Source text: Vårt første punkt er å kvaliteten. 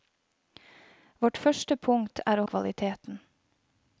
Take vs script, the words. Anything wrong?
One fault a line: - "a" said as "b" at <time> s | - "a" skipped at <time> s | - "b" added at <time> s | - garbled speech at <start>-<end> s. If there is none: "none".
none